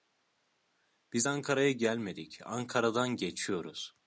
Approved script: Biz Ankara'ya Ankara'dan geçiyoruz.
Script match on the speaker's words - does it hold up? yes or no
no